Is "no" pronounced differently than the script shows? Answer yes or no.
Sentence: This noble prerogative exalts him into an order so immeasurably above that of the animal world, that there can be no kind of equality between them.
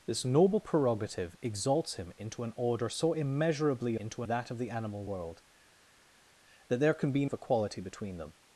yes